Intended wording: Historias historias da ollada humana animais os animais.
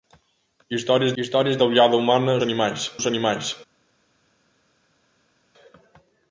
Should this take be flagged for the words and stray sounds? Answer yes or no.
no